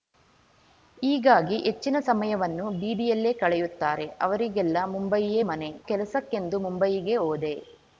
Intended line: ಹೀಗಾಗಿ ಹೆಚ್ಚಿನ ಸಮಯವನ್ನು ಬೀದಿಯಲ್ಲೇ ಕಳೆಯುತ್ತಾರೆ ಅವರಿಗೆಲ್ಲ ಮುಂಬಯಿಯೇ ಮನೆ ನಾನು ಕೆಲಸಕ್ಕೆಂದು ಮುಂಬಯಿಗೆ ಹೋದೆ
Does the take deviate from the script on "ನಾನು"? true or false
true